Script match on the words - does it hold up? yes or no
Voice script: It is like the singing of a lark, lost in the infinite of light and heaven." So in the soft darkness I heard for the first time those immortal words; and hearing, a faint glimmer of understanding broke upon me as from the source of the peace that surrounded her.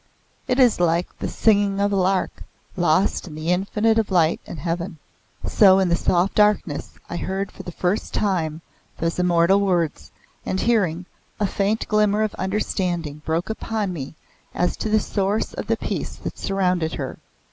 no